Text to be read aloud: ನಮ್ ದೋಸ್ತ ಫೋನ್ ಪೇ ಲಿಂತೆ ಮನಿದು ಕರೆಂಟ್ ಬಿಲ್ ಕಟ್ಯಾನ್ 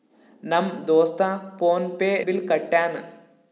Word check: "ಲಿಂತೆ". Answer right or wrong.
wrong